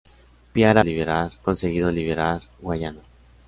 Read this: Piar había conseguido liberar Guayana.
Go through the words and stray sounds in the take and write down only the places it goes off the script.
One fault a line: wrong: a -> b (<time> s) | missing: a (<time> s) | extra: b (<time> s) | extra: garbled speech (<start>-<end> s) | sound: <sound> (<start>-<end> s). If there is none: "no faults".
wrong: había -> liberar (0.8 s)